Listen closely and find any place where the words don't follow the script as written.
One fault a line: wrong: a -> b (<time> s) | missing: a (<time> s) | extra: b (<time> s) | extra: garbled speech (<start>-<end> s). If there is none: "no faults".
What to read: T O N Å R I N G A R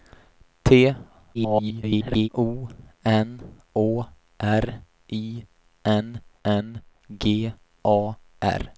extra: garbled speech (1.3-2.3 s)
extra: N (6.4 s)